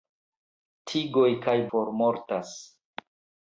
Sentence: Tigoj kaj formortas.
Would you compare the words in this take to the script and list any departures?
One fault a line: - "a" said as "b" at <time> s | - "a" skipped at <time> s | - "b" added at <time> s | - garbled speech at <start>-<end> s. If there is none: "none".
none